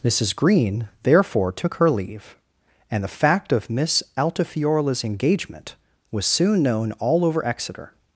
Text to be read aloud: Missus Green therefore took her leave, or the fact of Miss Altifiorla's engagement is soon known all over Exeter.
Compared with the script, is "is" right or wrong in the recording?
wrong